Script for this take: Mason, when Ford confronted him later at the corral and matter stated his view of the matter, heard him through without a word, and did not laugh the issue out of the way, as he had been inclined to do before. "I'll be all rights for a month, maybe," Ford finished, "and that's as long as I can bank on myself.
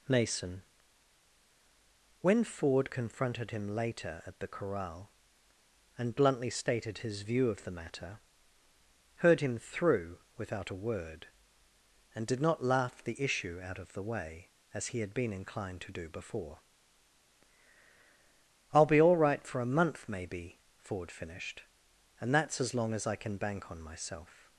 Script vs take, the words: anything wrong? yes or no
yes